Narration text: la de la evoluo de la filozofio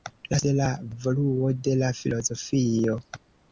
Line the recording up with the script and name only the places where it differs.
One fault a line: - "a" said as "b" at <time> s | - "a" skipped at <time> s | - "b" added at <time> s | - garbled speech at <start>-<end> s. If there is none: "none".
none